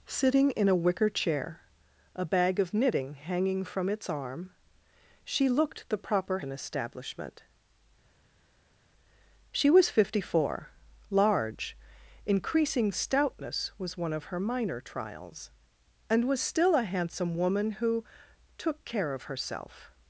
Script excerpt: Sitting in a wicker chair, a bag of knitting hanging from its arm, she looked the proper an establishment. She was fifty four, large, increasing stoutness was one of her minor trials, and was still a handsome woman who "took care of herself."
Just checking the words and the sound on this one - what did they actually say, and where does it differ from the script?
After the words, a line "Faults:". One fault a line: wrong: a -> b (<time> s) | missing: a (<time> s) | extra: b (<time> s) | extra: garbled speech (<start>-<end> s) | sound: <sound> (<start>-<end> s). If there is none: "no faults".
Sitting in a wicker chair, a bag of knitting hanging from its arm, she looked the proper an establishment. She was fifty four, large, increasing stoutness was one of her minor trials, and was still a handsome woman who "took care of herself."
Faults:
no faults